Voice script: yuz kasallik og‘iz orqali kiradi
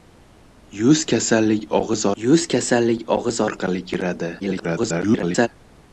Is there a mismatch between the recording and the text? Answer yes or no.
yes